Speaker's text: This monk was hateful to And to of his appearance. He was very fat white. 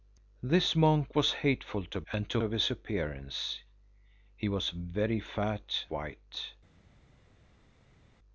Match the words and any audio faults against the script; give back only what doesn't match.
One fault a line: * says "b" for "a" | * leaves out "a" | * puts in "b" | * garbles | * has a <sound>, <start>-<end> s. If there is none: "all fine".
all fine